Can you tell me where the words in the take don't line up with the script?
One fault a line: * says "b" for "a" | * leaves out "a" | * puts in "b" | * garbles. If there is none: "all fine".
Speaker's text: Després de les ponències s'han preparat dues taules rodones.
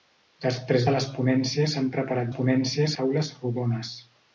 * says "ponències" for "dues"